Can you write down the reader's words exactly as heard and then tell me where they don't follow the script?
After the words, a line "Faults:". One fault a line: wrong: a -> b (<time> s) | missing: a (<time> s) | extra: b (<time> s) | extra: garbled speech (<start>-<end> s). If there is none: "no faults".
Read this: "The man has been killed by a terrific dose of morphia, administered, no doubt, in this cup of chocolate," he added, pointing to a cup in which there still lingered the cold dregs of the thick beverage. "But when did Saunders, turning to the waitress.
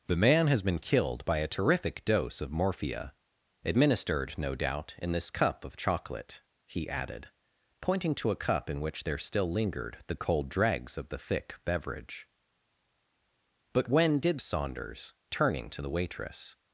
"The man has been killed by a terrific dose of morphia, administered, no doubt, in this cup of chocolate," he added, pointing to a cup in which there still lingered the cold dregs of the thick beverage. "But when did Saunders, turning to the waitress.
Faults:
no faults